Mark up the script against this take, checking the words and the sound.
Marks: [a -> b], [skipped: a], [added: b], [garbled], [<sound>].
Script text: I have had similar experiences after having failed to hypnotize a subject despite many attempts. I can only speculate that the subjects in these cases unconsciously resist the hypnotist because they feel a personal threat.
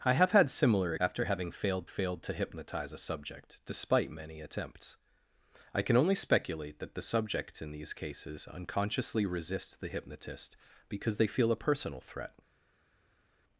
I have had similar [skipped: experiences] after having failed [added: failed] to hypnotize a subject despite many attempts. I can only speculate that the subjects in these cases unconsciously resist the hypnotist because they feel a personal threat.